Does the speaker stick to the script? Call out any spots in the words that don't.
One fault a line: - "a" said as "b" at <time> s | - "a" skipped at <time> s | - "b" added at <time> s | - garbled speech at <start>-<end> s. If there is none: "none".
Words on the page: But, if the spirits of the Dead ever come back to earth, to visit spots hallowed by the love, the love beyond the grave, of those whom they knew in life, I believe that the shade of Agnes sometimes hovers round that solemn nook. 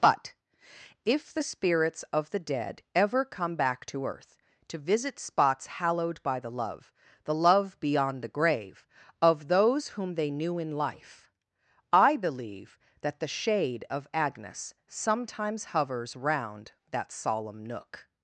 none